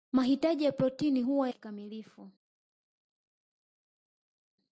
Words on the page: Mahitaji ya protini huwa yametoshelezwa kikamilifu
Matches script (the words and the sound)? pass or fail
fail